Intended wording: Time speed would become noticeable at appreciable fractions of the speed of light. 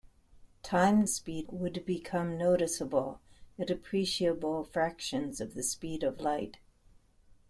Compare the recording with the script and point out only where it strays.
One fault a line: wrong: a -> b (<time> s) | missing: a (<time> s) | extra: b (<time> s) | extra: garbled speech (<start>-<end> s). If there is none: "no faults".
no faults